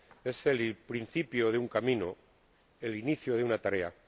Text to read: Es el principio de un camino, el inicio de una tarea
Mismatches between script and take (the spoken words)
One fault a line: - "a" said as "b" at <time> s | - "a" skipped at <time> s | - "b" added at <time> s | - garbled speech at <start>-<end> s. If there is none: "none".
none